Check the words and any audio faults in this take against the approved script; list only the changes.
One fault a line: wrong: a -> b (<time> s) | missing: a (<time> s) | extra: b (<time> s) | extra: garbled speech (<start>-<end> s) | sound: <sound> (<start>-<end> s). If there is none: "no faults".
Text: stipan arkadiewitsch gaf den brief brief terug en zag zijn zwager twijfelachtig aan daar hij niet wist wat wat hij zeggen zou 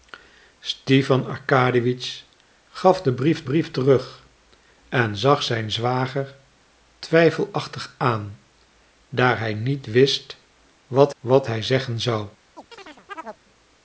sound: chirp (12.6-13.4 s)